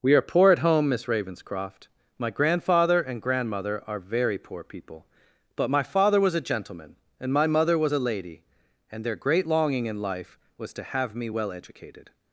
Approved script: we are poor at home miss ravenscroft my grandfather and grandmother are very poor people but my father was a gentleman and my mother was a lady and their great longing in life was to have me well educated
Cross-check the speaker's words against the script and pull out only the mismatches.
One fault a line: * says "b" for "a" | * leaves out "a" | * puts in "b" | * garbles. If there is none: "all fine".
all fine